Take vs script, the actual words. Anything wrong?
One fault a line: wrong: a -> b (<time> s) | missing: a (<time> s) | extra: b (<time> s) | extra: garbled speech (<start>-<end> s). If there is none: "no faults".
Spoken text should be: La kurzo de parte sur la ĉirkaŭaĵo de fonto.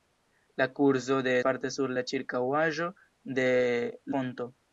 no faults